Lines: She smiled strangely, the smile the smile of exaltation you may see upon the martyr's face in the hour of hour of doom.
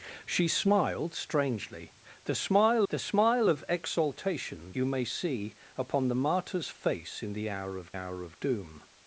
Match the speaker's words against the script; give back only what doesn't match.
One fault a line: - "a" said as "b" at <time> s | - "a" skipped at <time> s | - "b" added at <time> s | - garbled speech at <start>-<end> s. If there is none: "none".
none